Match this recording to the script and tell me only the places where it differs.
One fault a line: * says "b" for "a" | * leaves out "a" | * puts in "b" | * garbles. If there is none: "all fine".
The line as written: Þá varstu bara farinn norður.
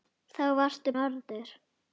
* leaves out "bara farinn"